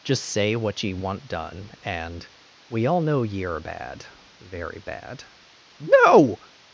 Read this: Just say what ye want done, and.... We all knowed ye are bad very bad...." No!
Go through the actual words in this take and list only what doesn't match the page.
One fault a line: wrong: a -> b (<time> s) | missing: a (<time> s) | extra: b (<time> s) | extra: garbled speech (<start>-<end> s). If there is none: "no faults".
wrong: knowed -> know (3.0 s)